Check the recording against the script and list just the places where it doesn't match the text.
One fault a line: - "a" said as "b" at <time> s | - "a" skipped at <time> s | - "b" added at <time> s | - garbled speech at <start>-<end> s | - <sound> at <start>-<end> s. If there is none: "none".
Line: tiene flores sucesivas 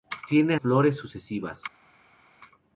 none